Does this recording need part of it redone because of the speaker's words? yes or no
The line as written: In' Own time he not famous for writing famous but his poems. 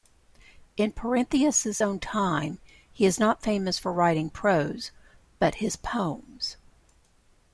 yes